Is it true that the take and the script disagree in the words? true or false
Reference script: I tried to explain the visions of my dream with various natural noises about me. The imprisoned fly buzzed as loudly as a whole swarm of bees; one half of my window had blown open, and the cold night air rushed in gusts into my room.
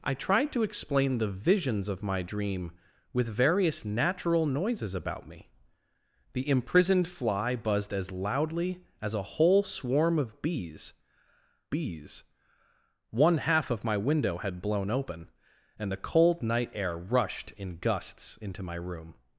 true